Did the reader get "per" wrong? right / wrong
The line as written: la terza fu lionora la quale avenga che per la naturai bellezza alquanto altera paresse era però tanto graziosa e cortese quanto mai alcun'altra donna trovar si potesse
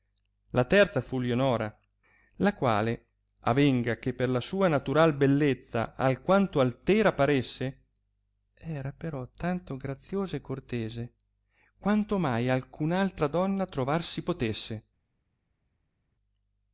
right